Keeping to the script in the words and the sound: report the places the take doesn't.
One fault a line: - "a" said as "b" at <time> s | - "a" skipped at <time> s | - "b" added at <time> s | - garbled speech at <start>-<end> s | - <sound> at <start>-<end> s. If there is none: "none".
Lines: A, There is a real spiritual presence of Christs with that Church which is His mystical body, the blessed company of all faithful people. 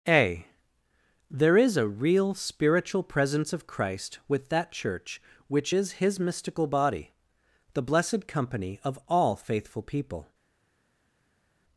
- "Christs" said as "Christ" at 3.7 s